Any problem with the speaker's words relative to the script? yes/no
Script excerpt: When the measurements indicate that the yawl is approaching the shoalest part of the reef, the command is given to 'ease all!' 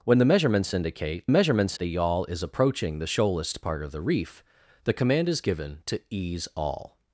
yes